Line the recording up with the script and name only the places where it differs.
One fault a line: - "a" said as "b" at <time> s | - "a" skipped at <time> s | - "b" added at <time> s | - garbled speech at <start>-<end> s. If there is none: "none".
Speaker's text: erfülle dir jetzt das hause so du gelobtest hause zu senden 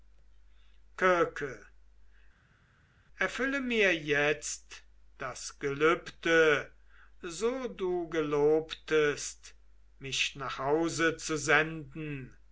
- "dir" said as "mir" at 3.6 s
- "hause" said as "gelübde" at 5.6 s
- "mich nach" added at 10.0 s